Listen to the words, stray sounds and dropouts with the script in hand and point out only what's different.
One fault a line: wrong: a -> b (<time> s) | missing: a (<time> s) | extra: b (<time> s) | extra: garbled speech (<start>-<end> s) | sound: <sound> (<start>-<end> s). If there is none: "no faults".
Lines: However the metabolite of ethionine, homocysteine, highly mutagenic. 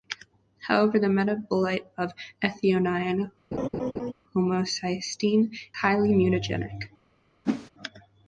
sound: laugh (3.5-4.1 s)
sound: whoosh (7.4-7.7 s)